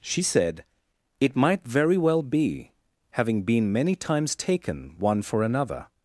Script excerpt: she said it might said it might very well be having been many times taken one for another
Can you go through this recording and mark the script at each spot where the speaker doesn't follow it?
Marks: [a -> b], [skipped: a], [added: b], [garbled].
she said it might [skipped: said it might] very well be having been many times taken one for another